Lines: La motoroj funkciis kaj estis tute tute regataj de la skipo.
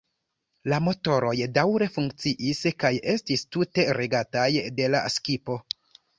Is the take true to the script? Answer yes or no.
no